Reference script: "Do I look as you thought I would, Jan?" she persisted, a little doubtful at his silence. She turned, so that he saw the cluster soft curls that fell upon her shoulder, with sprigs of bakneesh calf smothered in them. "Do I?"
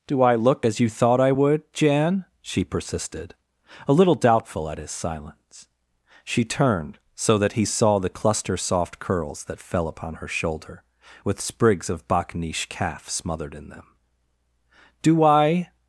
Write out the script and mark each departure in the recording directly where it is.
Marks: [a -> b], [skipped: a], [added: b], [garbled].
"Do I look as you thought I would, Jan?" she persisted, a little doubtful at his silence. She turned, so that he saw the cluster soft curls that fell upon her shoulder, with sprigs of bakneesh calf smothered in them. "Do I?"